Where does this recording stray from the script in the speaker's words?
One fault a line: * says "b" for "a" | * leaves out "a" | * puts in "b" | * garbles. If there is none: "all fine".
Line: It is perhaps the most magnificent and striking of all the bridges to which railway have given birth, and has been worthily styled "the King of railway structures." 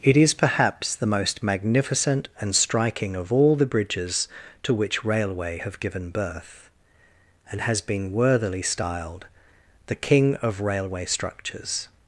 all fine